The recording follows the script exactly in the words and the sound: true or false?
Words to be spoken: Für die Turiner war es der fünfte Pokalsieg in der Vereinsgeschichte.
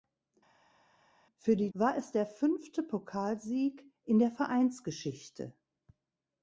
false